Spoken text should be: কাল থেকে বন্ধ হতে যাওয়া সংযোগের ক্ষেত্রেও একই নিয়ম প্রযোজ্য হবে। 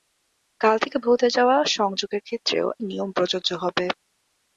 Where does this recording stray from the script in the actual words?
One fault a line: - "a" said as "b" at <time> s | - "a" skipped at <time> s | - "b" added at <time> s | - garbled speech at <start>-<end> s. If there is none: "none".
- "বন্ধ" skipped at 1.0 s
- "একই" skipped at 2.7 s